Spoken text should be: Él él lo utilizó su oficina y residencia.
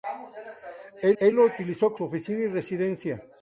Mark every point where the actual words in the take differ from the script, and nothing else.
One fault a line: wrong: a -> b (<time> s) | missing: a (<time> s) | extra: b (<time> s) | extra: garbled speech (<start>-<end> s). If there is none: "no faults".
no faults